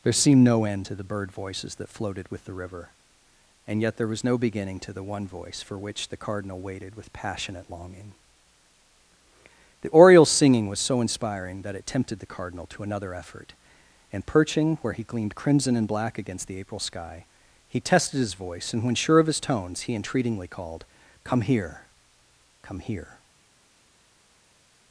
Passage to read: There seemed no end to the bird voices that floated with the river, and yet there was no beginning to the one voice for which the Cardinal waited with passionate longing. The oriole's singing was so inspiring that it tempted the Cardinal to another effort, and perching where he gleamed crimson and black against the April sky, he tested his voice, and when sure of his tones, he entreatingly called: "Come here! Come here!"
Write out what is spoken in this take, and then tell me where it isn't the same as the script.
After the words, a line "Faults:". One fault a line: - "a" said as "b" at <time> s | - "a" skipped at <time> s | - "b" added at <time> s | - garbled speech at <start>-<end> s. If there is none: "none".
There seemed no end to the bird voices that floated with the river, and yet there was no beginning to the one voice for which the Cardinal waited with passionate longing. The oriole's singing was so inspiring that it tempted the Cardinal to another effort, and perching where he gleamed crimson and black against the April sky, he tested his voice, and when sure of his tones, he entreatingly called: "Come here! Come here!"
Faults:
none